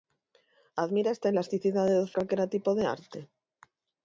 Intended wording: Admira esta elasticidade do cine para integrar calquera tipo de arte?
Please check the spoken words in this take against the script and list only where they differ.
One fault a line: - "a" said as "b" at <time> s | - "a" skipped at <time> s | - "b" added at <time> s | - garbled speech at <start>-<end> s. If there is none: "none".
- "cine para integrar" skipped at 2.1 s